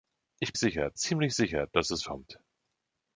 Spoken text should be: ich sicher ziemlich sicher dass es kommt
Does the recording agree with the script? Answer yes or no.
yes